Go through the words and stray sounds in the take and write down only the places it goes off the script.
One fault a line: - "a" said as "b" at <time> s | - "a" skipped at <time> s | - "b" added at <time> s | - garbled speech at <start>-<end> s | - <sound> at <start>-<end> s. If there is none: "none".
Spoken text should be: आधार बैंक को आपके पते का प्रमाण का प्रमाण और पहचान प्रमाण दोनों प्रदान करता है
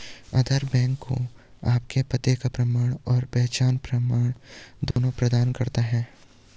- "का प्रमाण" skipped at 2.9 s
- dropout at 4.9-5.0 s